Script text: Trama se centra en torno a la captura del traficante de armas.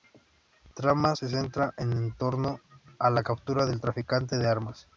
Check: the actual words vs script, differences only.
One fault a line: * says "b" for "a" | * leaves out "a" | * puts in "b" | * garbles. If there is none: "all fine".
all fine